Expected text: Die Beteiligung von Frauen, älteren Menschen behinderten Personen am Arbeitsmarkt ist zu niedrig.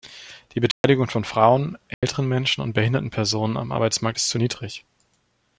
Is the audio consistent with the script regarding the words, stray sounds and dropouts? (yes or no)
no